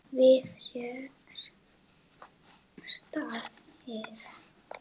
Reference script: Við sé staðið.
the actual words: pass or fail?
pass